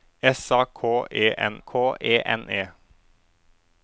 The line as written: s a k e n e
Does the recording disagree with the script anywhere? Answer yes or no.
yes